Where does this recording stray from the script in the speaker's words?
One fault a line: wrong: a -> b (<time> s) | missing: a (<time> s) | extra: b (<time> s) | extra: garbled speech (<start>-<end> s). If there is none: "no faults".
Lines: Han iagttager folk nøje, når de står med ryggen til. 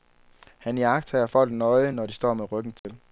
no faults